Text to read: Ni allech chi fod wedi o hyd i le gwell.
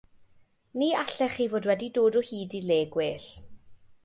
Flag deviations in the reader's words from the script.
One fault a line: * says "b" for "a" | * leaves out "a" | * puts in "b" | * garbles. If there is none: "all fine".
* puts in "dod"